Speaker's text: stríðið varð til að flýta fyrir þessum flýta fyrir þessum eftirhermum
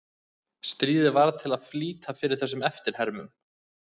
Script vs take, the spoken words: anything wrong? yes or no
yes